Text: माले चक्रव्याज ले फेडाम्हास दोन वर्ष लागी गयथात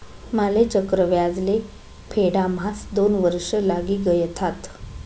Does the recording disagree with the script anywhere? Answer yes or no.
no